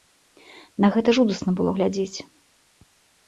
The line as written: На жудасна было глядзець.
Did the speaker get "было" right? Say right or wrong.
right